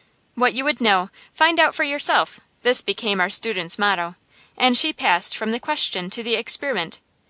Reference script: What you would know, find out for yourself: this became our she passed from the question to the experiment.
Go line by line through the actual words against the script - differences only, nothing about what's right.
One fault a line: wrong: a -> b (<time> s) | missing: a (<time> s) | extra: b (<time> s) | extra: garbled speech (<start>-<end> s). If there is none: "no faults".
extra: student's motto and (3.3 s)